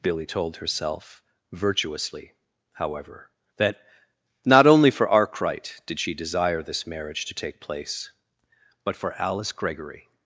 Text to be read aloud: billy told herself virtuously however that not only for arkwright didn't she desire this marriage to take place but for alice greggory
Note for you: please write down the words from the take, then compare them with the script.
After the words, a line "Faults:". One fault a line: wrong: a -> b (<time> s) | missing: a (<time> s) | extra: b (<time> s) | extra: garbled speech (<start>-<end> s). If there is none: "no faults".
billy told herself virtuously however that not only for arkwright did she desire this marriage to take place but for alice greggory
Faults:
wrong: didn't -> did (5.8 s)